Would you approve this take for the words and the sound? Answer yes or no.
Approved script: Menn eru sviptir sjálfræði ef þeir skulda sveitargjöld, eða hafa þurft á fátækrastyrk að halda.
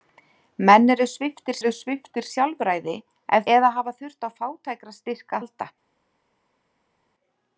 no